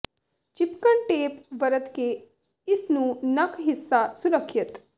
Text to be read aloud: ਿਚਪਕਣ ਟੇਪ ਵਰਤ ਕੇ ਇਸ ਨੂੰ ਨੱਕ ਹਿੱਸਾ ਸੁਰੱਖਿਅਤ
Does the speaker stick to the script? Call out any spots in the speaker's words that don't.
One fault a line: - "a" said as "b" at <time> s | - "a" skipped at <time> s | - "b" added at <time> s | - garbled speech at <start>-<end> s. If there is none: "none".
none